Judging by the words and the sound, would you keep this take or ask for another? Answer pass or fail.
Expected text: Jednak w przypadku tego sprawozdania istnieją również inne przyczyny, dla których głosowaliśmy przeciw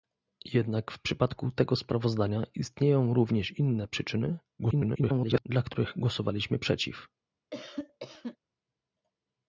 fail